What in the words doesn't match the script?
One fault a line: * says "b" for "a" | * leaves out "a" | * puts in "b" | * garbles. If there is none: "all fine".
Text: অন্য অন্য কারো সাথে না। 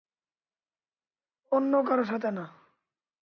* leaves out "অন্য"